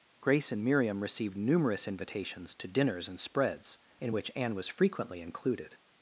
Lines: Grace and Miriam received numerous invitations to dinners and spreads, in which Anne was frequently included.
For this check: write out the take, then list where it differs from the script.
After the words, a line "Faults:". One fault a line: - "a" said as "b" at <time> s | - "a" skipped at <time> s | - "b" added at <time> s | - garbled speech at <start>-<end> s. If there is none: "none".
Grace and Miriam received numerous invitations to dinners and spreads, in which Anne was frequently included.
Faults:
none